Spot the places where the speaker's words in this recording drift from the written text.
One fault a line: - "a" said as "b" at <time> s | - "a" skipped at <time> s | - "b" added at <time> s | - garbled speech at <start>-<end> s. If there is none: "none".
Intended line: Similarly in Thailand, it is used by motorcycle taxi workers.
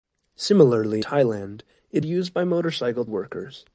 - "in" skipped at 1.1 s
- "is" skipped at 2.0 s
- "taxi" skipped at 3.1 s